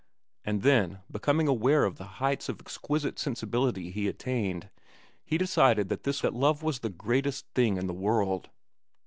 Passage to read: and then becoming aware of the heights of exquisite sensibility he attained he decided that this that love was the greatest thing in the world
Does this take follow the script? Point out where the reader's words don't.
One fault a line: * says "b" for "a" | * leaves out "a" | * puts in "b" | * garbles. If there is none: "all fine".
all fine